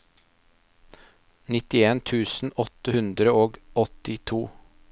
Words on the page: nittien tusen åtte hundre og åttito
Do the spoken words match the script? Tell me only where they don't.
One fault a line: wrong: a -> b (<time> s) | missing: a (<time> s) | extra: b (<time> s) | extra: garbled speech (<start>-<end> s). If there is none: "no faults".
no faults